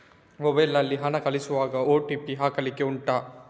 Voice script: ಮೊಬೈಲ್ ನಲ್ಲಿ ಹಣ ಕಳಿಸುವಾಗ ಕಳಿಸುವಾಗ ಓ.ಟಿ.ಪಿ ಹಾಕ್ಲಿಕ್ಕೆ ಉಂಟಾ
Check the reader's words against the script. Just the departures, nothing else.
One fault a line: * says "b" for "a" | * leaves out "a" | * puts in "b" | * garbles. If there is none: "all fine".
* leaves out "ಕಳಿಸುವಾಗ"